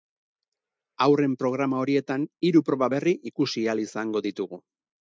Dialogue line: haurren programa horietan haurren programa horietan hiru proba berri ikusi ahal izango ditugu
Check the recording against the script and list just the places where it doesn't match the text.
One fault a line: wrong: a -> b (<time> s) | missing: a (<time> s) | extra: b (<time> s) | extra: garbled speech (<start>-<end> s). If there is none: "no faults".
missing: haurren programa horietan (2.2 s)